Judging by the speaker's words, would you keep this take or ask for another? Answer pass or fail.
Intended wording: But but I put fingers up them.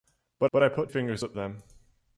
pass